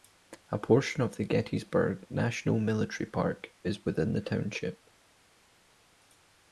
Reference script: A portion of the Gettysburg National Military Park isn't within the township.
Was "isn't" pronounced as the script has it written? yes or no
no